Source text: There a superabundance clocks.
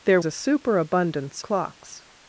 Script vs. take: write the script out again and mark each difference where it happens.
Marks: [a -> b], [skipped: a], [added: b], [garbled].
There a superabundance clocks.